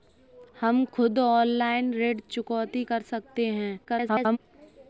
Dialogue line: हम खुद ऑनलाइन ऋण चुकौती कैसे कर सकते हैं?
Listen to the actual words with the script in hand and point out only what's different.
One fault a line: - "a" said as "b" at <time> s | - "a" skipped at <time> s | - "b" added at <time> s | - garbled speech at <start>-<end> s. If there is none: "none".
- "कैसे" skipped at 2.8 s
- garbled speech at 3.8-4.4 s